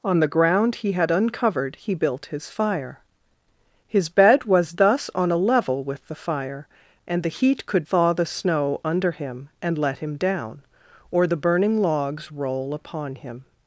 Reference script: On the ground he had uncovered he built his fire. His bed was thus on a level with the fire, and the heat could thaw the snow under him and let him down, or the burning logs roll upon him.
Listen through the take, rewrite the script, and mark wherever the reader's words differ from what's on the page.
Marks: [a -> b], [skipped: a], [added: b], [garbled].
On the ground he had uncovered he built his fire. His bed was thus on a level with the fire, and the heat could thaw the snow under him and let him down, or the burning logs roll upon him.